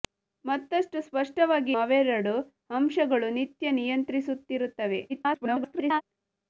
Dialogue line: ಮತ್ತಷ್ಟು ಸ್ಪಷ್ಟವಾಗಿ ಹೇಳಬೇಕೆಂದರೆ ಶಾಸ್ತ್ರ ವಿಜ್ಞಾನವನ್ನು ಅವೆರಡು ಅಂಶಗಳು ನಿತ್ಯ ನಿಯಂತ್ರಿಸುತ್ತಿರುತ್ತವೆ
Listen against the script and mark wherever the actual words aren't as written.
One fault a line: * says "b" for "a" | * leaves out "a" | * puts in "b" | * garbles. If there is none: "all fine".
* leaves out "ಹೇಳಬೇಕೆಂದರೆ ಶಾಸ್ತ್ರ ವಿಜ್ಞಾನವನ್ನು"
* garbles